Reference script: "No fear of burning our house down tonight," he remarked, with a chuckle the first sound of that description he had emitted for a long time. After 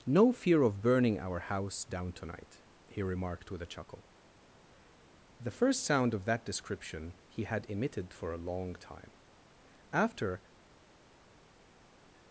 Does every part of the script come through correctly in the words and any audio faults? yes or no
yes